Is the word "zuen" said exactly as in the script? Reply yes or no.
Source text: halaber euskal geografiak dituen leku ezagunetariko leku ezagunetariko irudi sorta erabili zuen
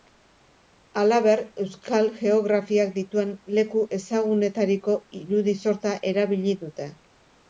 no